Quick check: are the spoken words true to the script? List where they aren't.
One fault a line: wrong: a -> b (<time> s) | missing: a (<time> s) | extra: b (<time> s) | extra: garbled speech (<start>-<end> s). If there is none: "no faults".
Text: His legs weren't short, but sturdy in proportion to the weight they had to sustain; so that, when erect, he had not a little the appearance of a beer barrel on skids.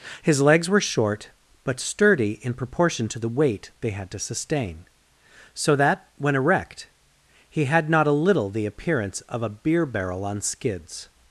wrong: weren't -> were (0.7 s)